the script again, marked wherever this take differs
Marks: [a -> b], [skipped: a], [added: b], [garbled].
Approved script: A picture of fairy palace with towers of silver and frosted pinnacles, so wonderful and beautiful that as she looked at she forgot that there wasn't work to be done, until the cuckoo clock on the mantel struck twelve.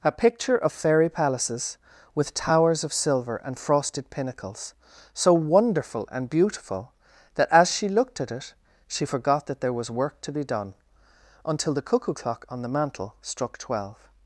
A picture of fairy [palace -> palaces] with towers of silver and frosted pinnacles, so wonderful and beautiful that as she looked at [added: it] she forgot that there [wasn't -> was] work to be done, until the cuckoo clock on the mantel struck twelve.